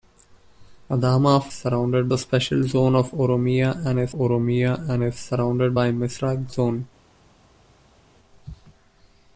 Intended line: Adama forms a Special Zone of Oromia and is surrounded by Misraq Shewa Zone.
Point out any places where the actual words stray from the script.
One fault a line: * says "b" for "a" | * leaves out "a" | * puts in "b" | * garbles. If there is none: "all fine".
* says "surrounded" for "forms"
* puts in "Oromia and is"
* leaves out "Shewa"